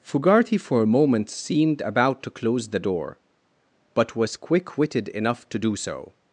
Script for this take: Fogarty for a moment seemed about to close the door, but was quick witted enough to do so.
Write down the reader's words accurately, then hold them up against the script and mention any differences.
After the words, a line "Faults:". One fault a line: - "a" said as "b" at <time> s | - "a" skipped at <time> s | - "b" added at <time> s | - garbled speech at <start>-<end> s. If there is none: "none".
Fogarty for a moment seemed about to close the door, but was quick witted enough to do so.
Faults:
none